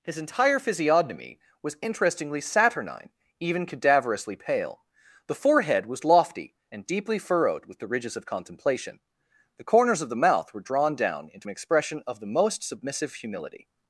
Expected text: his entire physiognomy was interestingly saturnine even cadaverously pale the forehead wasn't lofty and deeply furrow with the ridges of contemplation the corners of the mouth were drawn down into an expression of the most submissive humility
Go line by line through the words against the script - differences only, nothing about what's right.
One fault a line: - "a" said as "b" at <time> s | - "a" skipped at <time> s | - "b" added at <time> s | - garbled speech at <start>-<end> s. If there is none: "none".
- "wasn't" said as "was" at 5.9 s
- "furrow" said as "furrowed" at 7.2 s